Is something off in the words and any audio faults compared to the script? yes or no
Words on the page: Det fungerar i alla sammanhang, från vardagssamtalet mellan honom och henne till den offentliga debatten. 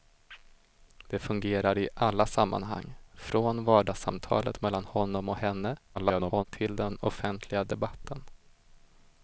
yes